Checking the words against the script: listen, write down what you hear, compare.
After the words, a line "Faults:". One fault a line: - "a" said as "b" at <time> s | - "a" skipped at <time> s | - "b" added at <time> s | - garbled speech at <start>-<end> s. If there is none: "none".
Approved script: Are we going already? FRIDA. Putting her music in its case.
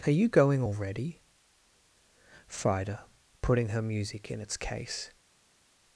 Are you going already? FRIDA. Putting her music in its case.
Faults:
- "we" said as "you" at 0.2 s